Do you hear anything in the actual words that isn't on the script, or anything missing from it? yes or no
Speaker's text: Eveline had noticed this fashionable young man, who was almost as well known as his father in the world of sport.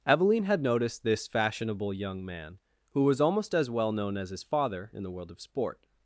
no